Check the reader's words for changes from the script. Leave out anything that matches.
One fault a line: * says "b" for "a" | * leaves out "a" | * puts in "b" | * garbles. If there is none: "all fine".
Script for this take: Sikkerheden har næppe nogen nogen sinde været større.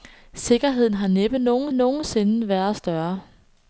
all fine